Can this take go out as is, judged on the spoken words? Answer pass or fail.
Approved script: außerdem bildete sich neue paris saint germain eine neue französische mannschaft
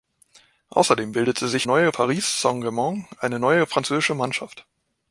pass